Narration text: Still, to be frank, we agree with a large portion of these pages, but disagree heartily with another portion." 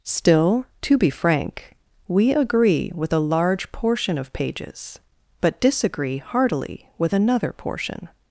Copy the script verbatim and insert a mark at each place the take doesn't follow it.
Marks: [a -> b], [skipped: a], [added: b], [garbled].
Still, to be frank, we agree with a large portion of [skipped: these] pages, but disagree heartily with another portion."